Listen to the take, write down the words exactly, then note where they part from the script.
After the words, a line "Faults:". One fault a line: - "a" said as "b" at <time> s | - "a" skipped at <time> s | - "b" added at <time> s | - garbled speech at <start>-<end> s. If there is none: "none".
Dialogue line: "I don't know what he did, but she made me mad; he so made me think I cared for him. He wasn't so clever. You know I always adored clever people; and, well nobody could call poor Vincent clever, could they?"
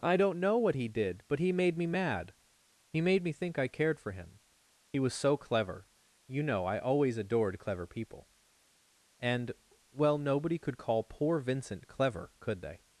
"I don't know what he did, but he made me mad; he made me think I cared for him. He was so clever. You know I always adored clever people; and, well nobody could call poor Vincent clever, could they?"
Faults:
- "she" said as "he" at 1.4 s
- "so" skipped at 3.0 s
- "wasn't" said as "was" at 5.0 s